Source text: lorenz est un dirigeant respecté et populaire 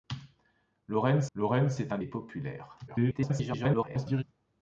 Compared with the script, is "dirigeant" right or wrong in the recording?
wrong